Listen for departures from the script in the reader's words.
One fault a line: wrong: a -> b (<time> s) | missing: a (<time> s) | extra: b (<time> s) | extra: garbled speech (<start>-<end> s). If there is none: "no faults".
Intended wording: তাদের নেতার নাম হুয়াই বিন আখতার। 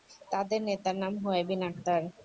no faults